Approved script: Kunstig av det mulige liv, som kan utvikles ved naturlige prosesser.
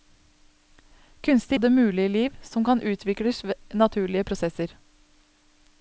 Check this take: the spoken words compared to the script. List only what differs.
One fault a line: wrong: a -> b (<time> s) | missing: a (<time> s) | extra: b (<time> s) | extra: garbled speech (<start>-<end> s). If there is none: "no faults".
no faults